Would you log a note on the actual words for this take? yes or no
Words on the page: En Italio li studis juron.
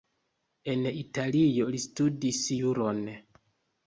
no